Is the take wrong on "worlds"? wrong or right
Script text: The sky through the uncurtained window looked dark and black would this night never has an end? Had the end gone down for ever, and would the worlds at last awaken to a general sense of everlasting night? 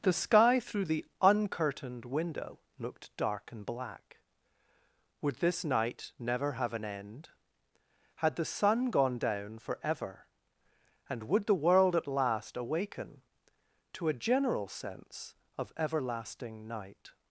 wrong